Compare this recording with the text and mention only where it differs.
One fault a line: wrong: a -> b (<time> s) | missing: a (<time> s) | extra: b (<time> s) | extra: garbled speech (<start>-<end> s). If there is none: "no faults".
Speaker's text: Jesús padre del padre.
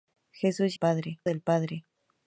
no faults